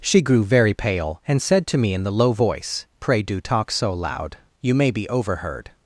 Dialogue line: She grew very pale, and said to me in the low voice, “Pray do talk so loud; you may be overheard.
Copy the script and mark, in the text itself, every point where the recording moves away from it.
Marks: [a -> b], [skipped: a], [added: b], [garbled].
She grew very pale, and said to me in the low voice, “Pray do talk so loud; you may be overheard.